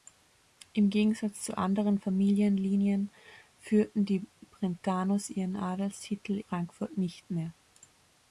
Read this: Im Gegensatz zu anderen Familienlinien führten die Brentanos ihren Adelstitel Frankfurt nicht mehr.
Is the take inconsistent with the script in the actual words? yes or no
no